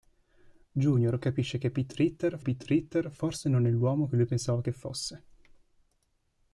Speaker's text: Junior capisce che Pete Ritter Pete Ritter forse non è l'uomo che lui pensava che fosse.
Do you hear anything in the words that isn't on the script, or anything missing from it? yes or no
no